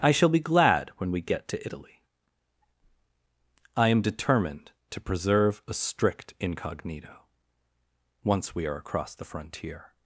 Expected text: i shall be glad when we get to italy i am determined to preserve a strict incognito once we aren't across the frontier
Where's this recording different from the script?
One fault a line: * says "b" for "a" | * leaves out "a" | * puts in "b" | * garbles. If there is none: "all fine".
* says "are" for "aren't"